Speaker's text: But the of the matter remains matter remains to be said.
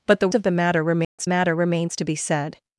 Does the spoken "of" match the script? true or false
true